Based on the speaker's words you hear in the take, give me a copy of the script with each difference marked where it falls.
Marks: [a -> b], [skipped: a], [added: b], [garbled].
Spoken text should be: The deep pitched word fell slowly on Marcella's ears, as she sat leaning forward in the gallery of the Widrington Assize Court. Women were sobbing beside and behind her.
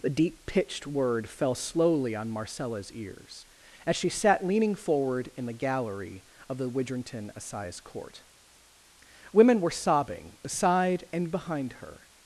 The deep pitched word fell slowly on Marcella's ears, as she sat leaning forward in the gallery of the Widrington Assize Court. Women were sobbing beside and behind her.